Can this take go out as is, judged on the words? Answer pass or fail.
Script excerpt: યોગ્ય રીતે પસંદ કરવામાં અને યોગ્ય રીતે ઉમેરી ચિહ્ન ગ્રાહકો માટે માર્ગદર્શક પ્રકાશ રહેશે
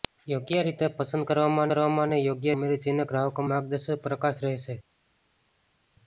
fail